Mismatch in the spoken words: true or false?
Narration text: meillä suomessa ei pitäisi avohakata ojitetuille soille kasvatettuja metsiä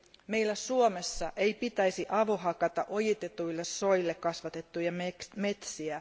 false